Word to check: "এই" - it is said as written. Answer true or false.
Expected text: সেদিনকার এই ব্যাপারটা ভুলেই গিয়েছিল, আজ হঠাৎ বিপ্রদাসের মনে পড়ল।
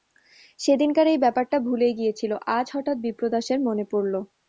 true